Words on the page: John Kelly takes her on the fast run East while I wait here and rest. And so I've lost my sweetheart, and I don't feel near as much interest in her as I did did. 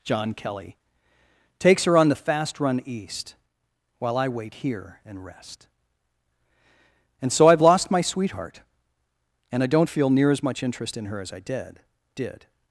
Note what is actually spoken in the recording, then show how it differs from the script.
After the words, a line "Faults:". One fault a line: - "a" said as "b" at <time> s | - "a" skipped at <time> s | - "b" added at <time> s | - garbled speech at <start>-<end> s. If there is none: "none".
John Kelly takes her on the fast run East while I wait here and rest. And so I've lost my sweetheart, and I don't feel near as much interest in her as I did did.
Faults:
none